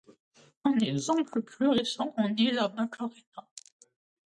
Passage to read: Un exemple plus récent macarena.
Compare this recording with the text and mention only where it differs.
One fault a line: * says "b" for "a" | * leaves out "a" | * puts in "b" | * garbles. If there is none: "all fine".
* puts in "en est la"